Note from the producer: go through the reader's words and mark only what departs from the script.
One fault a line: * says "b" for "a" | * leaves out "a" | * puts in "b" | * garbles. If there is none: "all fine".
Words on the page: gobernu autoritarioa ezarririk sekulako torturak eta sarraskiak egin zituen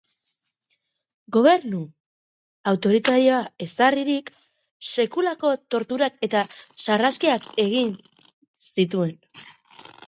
all fine